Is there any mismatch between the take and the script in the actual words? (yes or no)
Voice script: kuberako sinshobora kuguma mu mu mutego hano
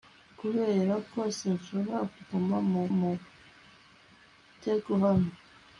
no